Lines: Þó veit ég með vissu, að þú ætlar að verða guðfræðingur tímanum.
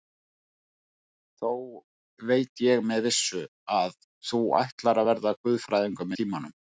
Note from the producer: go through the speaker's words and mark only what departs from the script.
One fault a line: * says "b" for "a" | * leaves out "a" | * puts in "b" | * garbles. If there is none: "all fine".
all fine